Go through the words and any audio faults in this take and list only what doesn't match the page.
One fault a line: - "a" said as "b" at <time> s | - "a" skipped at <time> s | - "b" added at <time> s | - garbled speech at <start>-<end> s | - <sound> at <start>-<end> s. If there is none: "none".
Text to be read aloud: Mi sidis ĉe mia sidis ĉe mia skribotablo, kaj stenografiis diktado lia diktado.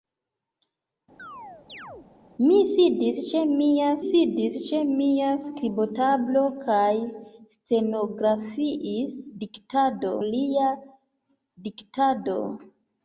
- chirp at 1.2-2.1 s